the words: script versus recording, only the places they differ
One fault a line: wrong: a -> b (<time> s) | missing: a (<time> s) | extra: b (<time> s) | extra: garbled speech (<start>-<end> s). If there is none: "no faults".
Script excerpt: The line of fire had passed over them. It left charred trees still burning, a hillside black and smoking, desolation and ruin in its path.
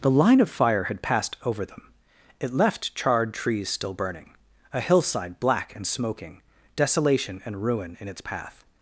no faults